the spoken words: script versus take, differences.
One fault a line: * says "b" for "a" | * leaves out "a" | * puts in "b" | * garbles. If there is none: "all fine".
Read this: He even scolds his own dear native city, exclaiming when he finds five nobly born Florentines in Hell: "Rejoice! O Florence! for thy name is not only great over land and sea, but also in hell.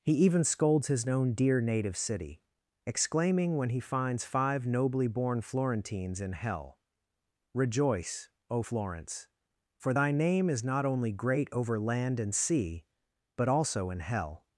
all fine